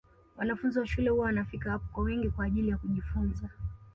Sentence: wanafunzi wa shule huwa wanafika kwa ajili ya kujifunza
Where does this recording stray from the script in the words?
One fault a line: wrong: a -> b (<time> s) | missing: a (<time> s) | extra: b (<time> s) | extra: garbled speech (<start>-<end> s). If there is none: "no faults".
extra: hapo kwa wingi (1.7 s)